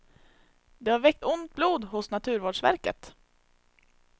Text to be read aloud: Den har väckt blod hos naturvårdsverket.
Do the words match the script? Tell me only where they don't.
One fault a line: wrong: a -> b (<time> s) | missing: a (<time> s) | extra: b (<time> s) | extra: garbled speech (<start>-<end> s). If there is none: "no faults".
wrong: Den -> Det (0.8 s)
extra: ont (1.2 s)